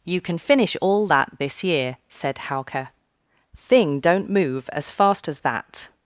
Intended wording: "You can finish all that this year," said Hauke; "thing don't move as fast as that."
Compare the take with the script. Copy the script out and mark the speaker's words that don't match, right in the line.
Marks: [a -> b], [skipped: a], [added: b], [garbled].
"You can finish all that this year," said Hauke; "thing don't move as fast as that."